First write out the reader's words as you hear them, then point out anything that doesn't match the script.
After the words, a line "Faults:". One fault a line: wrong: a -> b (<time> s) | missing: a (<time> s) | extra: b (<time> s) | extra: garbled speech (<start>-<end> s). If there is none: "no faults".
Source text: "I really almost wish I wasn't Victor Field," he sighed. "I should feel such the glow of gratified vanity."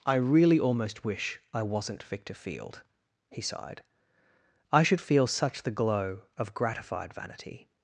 "I really almost wish I wasn't Victor Field," he sighed. "I should feel such the glow of gratified vanity."
Faults:
no faults